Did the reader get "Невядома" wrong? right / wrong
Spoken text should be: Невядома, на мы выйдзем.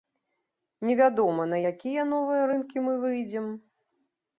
right